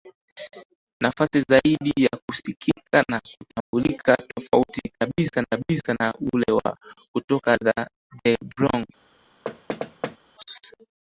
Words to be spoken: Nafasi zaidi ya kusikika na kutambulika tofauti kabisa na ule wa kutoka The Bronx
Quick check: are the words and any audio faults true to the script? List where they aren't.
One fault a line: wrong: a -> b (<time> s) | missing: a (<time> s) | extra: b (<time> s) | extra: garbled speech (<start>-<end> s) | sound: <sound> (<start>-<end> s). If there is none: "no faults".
sound: dropout (3.6-3.7 s)
extra: kabisa (5.5 s)
sound: thud (9.4-10.2 s)